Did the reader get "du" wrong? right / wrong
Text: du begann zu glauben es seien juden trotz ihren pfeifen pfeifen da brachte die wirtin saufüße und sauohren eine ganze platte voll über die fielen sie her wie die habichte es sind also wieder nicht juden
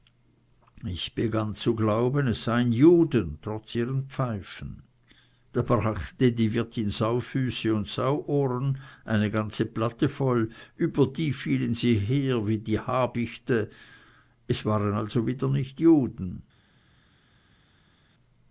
wrong